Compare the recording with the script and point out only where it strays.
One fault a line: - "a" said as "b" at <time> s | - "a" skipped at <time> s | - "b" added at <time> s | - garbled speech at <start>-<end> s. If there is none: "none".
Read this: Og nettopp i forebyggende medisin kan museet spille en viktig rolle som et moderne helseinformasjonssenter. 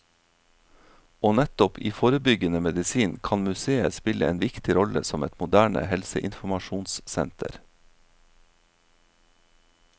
none